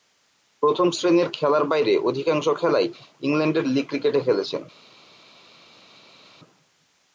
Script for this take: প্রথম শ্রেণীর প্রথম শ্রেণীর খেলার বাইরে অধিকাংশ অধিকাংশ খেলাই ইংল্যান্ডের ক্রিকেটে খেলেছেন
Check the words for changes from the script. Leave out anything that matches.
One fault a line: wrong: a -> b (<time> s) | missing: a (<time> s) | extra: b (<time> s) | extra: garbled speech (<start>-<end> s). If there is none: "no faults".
missing: প্রথম শ্রেণীর (1.3 s)
missing: অধিকাংশ (2.5 s)
extra: লীগ (3.6 s)